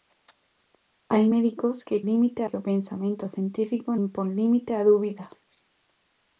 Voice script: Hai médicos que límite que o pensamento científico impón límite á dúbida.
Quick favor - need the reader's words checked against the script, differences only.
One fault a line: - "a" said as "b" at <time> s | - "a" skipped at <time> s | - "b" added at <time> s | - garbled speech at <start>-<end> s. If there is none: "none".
none